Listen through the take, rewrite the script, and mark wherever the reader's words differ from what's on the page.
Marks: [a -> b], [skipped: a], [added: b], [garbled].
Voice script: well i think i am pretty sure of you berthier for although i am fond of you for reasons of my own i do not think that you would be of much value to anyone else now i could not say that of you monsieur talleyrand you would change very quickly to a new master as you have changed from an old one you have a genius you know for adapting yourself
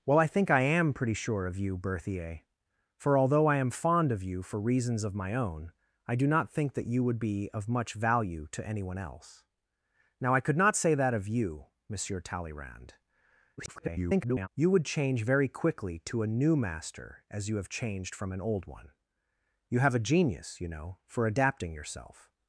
well i think i am pretty sure of you berthier for although i am fond of you for reasons of my own i do not think that you would be of much value to anyone else now i could not say that of you monsieur talleyrand [garbled] you would change very quickly to a new master as you have changed from an old one you have a genius you know for adapting yourself